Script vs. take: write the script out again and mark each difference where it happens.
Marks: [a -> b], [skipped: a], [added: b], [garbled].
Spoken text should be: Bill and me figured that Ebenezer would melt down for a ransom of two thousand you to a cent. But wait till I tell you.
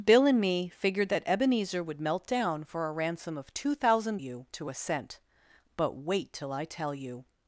Bill and me figured that Ebenezer would melt down for a ransom of two thousand you to a cent. But wait till I tell you.